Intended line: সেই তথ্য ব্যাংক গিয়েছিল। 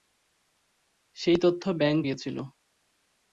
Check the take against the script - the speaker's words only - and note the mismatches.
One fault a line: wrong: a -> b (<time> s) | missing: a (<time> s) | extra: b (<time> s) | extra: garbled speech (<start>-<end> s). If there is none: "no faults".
no faults